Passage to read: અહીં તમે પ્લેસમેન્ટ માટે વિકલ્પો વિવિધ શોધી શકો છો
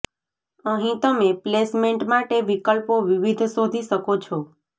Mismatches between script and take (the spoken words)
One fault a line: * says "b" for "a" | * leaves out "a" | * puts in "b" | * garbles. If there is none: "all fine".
all fine